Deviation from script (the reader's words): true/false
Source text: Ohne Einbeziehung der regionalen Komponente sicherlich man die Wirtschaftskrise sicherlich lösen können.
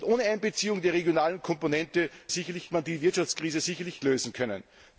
false